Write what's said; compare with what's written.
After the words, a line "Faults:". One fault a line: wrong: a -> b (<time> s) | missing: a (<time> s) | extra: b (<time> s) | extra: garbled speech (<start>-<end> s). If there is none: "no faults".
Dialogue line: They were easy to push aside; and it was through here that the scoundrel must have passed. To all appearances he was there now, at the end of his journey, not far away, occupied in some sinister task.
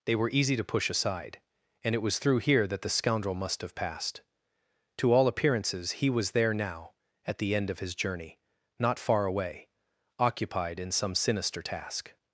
They were easy to push aside; and it was through here that the scoundrel must have passed. To all appearances he was there now, at the end of his journey, not far away, occupied in some sinister task.
Faults:
no faults